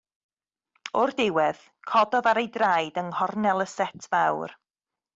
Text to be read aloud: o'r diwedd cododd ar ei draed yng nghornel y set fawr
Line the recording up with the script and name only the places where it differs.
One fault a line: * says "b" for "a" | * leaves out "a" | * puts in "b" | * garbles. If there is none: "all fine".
all fine